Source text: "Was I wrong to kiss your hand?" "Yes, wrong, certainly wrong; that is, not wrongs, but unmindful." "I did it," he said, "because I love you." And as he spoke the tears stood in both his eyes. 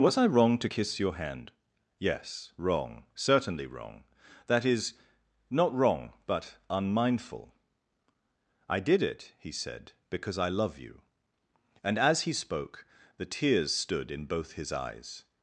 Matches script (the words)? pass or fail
fail